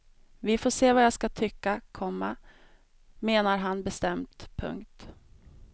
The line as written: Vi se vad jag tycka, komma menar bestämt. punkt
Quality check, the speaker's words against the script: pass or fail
fail